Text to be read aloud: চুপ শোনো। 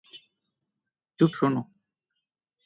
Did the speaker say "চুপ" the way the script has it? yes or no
yes